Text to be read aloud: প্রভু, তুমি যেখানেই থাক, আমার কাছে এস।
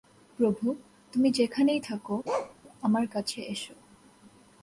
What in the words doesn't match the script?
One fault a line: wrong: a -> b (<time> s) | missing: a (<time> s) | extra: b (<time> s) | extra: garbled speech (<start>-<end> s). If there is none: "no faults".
no faults